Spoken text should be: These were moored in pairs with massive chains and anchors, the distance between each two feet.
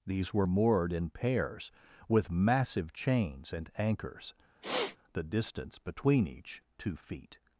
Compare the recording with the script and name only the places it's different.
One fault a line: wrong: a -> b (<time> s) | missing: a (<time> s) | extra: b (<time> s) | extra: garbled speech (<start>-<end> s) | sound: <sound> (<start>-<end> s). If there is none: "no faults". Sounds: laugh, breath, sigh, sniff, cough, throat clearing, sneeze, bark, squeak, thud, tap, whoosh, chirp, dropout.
sound: sniff (4.6-5.0 s)